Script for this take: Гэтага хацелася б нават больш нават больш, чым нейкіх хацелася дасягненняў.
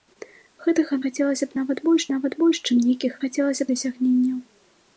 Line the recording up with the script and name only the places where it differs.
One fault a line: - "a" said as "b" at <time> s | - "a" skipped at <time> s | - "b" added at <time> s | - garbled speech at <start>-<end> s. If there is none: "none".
none